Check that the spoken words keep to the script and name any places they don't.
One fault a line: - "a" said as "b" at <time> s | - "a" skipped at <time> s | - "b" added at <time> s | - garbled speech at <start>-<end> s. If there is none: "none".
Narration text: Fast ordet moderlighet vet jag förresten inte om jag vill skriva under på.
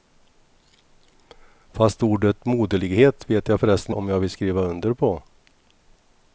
- "inte" skipped at 4.0 s